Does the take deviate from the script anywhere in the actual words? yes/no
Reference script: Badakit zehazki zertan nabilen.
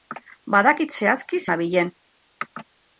yes